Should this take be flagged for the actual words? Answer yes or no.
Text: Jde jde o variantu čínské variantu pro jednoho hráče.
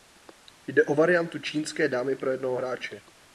yes